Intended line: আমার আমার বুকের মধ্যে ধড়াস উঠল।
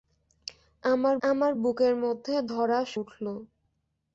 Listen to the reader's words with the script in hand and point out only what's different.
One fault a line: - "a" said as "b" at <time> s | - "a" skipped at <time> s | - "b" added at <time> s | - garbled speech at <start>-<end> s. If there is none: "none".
none